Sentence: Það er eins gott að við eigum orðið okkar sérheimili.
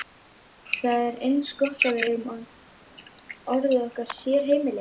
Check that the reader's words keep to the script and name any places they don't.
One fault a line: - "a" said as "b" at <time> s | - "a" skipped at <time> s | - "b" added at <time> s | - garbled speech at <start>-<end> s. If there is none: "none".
none